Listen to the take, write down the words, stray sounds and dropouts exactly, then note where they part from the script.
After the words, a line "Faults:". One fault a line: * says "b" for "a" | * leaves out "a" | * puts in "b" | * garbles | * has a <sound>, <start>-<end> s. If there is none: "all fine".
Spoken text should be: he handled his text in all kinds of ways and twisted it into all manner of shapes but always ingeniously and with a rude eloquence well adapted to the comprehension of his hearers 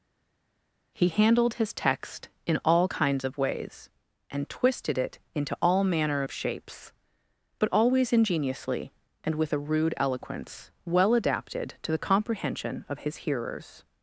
he handled his text in all kinds of ways and twisted it into all manner of shapes but always ingeniously and with a rude eloquence well adapted to the comprehension of his hearers
Faults:
all fine